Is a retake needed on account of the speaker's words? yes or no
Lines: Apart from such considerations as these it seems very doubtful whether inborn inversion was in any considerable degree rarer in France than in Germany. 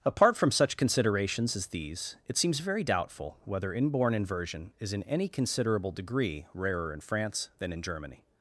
yes